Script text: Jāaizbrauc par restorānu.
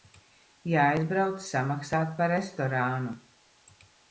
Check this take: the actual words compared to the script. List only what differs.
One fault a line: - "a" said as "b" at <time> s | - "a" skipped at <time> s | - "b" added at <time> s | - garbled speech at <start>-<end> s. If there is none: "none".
- "samaksāt" added at 1.5 s